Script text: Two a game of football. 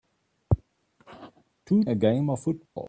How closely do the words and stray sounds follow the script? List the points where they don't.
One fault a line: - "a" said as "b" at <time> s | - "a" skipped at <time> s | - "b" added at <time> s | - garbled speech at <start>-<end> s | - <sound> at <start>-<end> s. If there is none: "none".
- dropout at 2.7-2.8 s